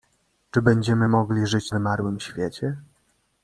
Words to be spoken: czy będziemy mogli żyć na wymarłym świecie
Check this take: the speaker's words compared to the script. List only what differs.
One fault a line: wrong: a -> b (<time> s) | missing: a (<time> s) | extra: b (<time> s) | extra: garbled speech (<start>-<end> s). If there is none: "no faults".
missing: na (1.7 s)